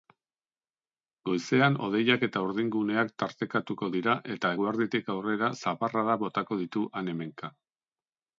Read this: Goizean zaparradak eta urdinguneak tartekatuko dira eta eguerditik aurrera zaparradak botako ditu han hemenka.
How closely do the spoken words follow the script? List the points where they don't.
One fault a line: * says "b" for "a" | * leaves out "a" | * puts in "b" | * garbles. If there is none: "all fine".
* says "hodeiak" for "zaparradak"